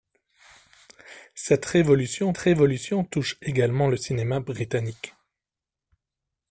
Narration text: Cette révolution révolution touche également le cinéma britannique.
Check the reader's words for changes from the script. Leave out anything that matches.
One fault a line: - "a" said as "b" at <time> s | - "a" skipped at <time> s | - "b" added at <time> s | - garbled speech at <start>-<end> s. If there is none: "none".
none